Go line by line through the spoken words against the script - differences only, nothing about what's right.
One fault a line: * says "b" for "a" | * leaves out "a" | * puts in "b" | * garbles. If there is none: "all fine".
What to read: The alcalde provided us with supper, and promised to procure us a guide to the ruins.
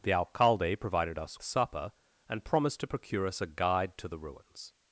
* leaves out "with"